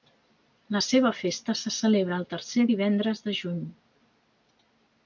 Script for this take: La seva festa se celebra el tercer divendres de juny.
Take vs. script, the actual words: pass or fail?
pass